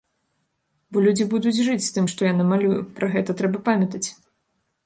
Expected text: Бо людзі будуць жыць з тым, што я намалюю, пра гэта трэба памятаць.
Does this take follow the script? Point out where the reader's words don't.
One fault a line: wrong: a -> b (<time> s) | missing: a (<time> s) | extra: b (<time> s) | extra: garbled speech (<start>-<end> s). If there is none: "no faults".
no faults